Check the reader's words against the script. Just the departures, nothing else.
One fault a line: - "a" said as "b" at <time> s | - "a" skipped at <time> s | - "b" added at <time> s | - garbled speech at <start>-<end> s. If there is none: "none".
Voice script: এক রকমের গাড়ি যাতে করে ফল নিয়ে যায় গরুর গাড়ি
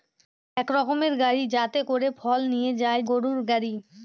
none